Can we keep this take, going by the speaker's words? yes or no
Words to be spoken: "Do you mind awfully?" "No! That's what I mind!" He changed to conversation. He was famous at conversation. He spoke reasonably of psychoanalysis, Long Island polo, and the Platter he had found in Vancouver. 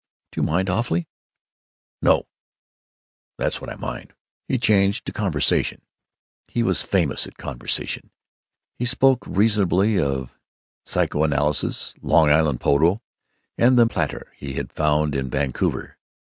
yes